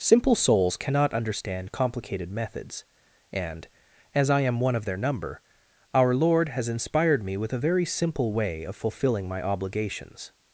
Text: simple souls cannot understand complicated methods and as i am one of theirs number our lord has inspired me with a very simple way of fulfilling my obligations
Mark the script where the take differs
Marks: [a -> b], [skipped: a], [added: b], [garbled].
simple souls cannot understand complicated methods and as i am one of [theirs -> their] number our lord has inspired me with a very simple way of fulfilling my obligations